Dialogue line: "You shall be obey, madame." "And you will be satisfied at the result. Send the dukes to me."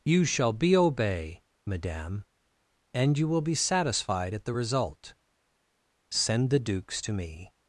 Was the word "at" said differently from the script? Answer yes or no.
no